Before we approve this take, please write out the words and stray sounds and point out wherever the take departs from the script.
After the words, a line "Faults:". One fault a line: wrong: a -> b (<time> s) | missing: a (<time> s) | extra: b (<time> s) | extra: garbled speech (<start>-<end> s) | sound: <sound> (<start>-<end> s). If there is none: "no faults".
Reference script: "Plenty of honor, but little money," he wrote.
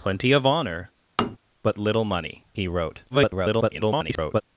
"Plenty of honor, but little money," he wrote. [garbled]
Faults:
sound: tap (1.2-1.4 s)
extra: garbled speech (3.1-4.4 s)